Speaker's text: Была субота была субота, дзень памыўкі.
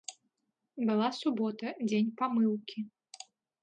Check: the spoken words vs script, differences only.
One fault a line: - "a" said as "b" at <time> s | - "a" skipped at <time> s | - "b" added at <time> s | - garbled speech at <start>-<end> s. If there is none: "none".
- "была субота" skipped at 1.7 s